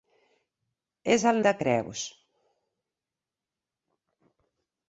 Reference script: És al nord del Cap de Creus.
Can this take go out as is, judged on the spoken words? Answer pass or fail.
fail